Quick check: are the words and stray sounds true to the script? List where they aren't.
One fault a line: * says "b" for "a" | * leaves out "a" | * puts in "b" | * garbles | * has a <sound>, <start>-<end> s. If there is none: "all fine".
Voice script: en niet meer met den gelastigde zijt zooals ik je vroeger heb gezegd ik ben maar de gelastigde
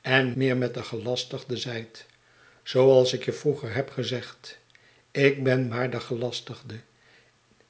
* leaves out "niet"